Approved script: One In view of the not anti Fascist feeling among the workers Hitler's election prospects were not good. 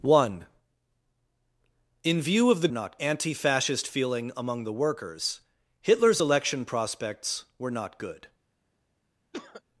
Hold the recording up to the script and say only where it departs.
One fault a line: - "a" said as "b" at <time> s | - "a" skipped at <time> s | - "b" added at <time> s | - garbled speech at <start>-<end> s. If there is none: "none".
none